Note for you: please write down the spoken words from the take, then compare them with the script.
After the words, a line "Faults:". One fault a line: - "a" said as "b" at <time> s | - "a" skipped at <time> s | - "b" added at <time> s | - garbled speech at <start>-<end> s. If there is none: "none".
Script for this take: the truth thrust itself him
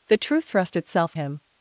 the truth thrust itself him
Faults:
none